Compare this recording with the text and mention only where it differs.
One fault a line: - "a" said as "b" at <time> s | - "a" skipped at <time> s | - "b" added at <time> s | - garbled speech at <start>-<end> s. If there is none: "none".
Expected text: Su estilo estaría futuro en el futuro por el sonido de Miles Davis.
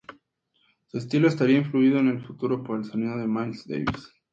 - "futuro" said as "influido" at 1.6 s